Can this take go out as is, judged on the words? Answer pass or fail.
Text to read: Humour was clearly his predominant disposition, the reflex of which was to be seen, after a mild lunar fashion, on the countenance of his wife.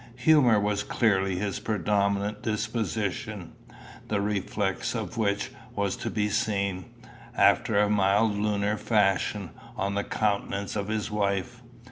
pass